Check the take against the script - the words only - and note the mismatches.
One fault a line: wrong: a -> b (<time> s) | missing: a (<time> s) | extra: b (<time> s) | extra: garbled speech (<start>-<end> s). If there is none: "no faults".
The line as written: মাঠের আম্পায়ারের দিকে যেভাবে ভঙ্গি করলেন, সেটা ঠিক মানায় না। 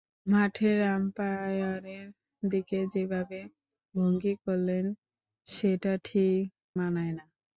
no faults